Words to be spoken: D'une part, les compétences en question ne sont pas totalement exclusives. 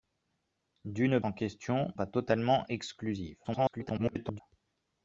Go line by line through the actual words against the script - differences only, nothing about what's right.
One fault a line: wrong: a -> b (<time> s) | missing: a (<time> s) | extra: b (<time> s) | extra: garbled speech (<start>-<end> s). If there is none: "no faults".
missing: part les compétences (1.2 s)
missing: ne sont (1.9 s)
extra: garbled speech (3.4-4.4 s)